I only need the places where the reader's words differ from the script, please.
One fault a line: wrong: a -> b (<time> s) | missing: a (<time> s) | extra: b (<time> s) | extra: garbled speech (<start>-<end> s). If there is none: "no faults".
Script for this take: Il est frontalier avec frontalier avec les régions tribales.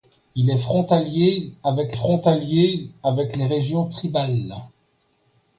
no faults